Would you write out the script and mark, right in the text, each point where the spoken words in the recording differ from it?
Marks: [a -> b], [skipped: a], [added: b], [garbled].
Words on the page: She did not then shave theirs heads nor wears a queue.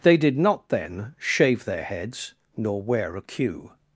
[She -> They] did not then shave [theirs -> their] heads nor [wears -> wear] a queue.